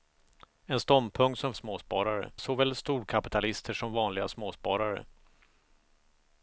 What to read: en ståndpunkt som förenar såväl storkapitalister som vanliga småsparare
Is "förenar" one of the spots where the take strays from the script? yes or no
yes